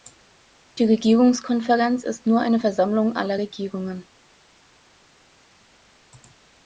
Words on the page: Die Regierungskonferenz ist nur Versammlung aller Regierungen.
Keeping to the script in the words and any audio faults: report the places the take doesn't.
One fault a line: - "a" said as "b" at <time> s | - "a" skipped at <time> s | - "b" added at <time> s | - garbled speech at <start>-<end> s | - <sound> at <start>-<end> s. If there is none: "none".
- "eine" added at 2.4 s